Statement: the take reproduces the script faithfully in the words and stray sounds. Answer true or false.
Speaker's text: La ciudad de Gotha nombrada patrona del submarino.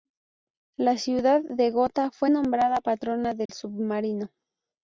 false